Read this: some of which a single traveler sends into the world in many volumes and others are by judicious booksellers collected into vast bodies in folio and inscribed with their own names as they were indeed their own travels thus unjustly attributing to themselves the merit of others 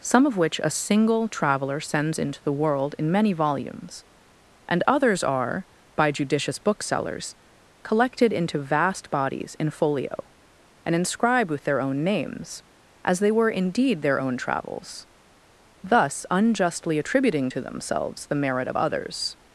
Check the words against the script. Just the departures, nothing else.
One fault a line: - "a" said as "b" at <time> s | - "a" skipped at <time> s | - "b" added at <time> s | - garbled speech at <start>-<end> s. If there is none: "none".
none